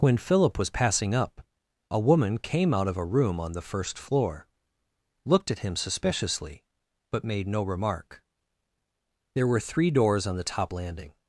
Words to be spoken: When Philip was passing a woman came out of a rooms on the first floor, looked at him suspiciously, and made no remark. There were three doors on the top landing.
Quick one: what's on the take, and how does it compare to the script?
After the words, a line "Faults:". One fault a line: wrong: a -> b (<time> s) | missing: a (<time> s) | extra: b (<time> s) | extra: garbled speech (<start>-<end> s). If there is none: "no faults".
When Philip was passing up a woman came out of a room on the first floor, looked at him suspiciously, but made no remark. There were three doors on the top landing.
Faults:
extra: up (1.1 s)
wrong: rooms -> room (3.0 s)
wrong: and -> but (7.1 s)